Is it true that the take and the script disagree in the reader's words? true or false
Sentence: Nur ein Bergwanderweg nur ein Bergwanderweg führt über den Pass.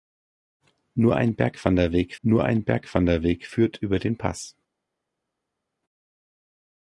false